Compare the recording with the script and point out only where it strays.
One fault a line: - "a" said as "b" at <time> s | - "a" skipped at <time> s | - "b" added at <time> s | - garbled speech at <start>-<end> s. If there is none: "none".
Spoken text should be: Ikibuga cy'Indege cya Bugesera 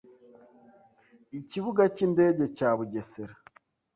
none